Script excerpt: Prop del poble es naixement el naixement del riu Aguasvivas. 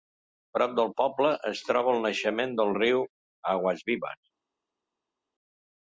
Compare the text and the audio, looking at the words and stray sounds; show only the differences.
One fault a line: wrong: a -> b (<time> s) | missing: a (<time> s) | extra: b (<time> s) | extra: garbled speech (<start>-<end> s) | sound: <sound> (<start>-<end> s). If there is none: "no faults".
wrong: naixement -> troba (1.7 s)